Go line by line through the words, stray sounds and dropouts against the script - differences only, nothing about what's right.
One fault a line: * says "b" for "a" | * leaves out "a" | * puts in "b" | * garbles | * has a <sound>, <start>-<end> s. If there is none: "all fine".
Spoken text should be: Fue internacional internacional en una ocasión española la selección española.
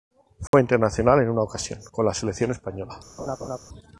* has a dropout, 0.5-0.5 s
* leaves out "internacional"
* says "con" for "española"
* has a laugh, 3.2-3.6 s